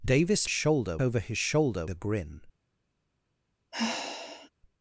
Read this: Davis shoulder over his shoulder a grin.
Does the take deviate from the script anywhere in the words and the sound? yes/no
yes